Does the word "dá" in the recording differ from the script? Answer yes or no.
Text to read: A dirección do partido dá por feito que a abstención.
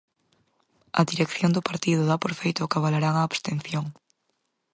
no